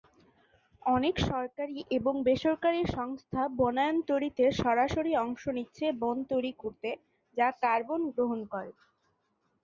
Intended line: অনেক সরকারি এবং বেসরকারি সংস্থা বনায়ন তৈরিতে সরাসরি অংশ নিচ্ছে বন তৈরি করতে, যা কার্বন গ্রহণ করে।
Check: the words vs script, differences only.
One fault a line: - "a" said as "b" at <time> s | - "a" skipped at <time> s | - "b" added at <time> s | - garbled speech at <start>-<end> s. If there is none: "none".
none